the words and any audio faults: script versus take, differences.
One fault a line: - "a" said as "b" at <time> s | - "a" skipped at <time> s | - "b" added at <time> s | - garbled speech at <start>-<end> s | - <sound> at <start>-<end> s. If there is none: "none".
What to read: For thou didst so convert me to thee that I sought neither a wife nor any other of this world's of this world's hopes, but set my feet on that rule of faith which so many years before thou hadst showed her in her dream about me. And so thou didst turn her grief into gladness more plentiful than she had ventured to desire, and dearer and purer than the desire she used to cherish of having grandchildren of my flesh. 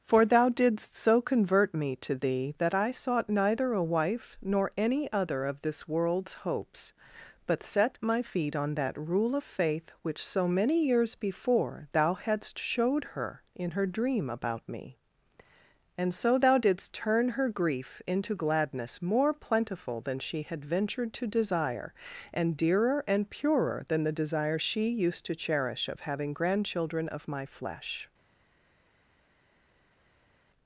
- "of this world's" skipped at 6.3 s